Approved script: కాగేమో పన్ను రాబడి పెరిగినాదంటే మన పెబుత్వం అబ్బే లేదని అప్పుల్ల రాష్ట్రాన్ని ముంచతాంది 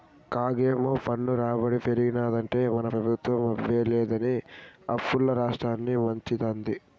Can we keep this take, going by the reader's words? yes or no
yes